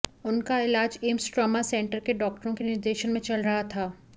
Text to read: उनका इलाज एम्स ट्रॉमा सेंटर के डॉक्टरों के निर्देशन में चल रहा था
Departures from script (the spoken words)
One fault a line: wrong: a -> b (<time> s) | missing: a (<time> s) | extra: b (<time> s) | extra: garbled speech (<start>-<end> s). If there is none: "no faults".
no faults